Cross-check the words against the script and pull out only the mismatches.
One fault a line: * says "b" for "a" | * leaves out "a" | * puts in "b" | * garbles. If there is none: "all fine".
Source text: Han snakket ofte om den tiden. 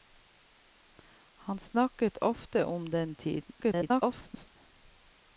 * garbles